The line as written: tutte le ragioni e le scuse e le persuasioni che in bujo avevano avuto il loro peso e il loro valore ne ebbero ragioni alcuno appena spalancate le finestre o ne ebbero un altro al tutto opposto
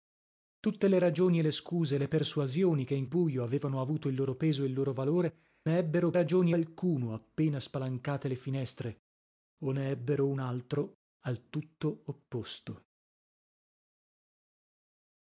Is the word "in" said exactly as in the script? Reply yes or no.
yes